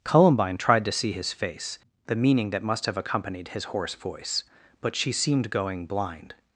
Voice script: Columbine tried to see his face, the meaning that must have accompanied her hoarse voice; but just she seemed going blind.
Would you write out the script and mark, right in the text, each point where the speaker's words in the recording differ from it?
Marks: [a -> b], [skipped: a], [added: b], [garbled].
Columbine tried to see his face, the meaning that must have accompanied [her -> his] hoarse voice; but [skipped: just] she seemed going blind.